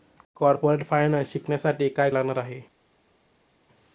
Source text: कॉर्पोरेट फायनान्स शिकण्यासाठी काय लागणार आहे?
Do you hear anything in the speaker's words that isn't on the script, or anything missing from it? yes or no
no